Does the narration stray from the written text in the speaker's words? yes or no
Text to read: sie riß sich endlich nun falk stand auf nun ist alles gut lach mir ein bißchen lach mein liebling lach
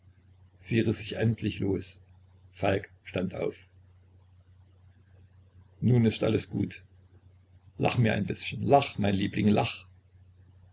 yes